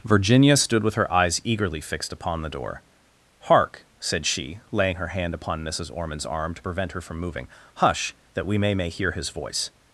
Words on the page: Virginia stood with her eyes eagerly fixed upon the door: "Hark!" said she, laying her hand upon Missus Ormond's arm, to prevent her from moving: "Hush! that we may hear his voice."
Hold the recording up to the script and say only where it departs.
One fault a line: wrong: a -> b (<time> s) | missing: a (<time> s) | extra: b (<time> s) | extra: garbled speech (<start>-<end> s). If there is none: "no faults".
extra: may (8.7 s)